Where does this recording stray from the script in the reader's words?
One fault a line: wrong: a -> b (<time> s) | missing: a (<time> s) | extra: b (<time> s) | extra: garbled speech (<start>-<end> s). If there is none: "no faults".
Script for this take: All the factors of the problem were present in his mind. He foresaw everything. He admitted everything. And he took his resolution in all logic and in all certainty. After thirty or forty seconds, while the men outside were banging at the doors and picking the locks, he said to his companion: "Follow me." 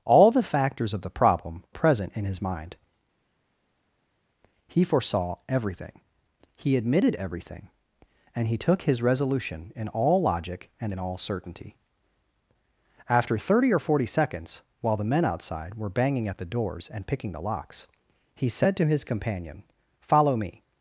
missing: were (1.6 s)